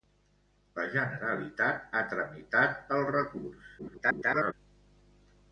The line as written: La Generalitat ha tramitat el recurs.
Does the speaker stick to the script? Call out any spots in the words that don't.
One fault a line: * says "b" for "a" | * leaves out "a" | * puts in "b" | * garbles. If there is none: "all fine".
* garbles